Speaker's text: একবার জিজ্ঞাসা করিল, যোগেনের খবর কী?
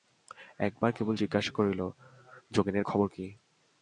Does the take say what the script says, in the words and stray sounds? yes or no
no